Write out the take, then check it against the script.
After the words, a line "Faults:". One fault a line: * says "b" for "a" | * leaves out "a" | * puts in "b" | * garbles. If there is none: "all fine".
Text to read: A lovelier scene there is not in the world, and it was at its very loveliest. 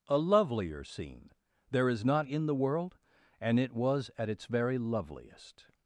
A lovelier scene there is not in the world, and it was at its very loveliest.
Faults:
all fine